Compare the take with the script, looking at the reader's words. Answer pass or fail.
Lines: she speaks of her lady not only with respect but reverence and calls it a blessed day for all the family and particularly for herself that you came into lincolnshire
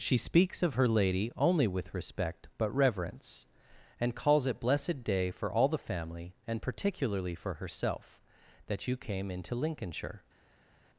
fail